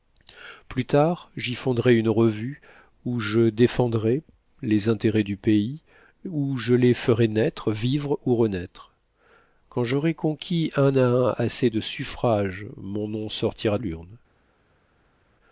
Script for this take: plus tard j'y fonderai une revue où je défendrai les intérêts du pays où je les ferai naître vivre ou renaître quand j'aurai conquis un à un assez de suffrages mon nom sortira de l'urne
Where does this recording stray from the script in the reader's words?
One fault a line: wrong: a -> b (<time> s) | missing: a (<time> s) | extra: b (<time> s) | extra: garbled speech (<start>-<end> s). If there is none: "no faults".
missing: de (13.8 s)